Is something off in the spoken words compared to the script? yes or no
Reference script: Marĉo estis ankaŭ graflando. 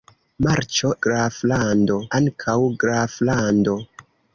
yes